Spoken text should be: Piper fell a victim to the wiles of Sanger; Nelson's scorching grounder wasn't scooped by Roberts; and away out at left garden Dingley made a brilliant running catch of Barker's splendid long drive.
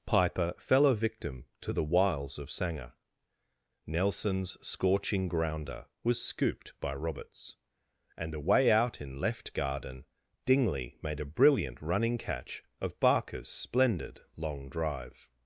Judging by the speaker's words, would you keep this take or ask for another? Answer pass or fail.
fail